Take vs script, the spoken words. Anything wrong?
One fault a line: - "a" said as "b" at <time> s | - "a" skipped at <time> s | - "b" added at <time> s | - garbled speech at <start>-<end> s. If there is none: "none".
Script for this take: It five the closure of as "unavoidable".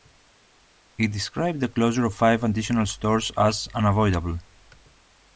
- "five" said as "described" at 1.1 s
- "five additional stores" added at 2.1 s